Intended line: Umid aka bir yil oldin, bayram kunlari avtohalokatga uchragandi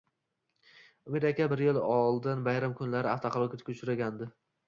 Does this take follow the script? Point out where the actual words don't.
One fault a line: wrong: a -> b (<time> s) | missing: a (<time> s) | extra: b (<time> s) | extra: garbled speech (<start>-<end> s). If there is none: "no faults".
no faults